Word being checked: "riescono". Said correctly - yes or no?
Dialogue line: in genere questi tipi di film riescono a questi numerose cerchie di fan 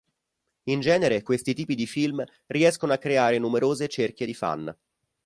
yes